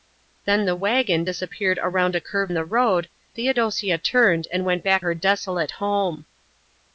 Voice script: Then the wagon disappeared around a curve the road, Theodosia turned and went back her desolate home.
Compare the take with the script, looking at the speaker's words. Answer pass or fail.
pass